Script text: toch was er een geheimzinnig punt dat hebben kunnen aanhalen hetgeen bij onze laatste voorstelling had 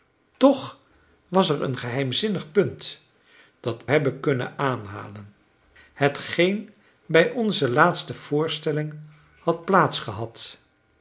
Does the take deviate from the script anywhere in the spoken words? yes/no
no